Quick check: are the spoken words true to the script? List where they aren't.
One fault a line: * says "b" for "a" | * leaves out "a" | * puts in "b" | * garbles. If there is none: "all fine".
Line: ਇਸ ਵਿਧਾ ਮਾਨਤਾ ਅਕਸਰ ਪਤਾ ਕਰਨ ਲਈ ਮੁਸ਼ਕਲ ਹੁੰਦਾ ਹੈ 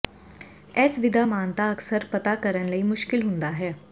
all fine